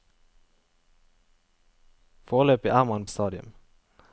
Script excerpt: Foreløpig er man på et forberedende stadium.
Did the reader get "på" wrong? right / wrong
wrong